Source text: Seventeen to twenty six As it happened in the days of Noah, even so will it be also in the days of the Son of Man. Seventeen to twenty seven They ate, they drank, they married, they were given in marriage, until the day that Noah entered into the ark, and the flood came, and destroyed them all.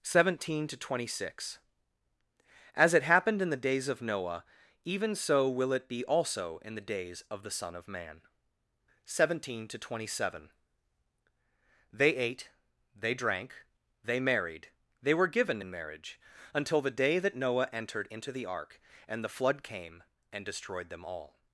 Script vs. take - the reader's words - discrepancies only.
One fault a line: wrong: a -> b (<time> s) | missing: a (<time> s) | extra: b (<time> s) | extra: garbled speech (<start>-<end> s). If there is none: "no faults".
no faults